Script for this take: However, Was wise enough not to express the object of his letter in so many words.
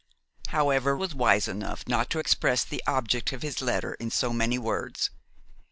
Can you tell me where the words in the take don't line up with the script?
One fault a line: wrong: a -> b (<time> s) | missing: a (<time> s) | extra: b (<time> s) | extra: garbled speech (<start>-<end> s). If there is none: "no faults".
no faults